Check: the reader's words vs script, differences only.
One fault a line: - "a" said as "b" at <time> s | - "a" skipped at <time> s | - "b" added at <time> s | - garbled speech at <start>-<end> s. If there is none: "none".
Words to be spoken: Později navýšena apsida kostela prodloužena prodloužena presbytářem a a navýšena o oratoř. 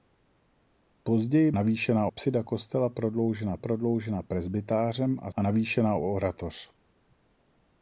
none